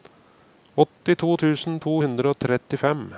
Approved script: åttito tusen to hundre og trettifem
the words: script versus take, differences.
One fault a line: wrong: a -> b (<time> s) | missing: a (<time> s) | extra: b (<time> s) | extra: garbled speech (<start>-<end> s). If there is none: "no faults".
no faults